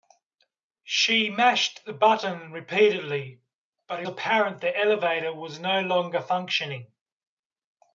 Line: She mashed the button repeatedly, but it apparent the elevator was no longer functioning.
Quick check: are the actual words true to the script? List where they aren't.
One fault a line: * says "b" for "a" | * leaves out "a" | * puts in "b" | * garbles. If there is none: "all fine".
all fine